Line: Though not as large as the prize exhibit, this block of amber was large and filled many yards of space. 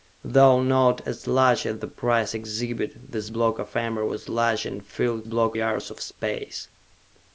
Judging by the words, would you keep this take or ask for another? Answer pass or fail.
fail